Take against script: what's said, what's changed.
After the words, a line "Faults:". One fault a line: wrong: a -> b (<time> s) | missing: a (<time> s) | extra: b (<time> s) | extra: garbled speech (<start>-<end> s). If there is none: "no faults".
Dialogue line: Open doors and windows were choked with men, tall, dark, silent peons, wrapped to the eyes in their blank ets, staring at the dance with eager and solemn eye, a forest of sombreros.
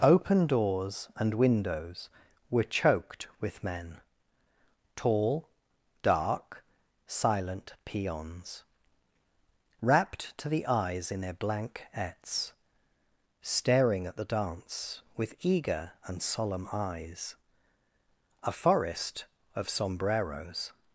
Open doors and windows were choked with men, tall, dark, silent peons, wrapped to the eyes in their blank ets, staring at the dance with eager and solemn eyes, a forest of sombreros.
Faults:
wrong: eye -> eyes (16.7 s)